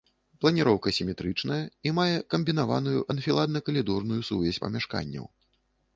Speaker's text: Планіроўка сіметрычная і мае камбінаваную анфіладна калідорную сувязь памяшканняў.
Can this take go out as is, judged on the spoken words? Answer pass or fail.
pass